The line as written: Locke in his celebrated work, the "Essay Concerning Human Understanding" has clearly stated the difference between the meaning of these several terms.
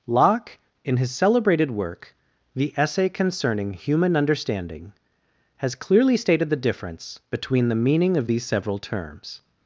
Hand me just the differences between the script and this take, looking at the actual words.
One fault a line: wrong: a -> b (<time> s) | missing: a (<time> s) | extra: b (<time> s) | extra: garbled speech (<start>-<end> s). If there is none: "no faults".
no faults